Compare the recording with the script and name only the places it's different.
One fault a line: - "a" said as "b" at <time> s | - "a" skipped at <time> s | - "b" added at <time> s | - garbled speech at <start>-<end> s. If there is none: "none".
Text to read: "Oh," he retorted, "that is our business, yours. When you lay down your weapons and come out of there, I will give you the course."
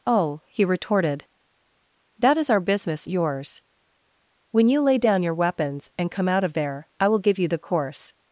none